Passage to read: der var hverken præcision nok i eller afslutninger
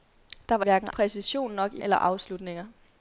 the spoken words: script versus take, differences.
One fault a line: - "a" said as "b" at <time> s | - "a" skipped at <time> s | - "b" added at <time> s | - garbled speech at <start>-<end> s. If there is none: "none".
none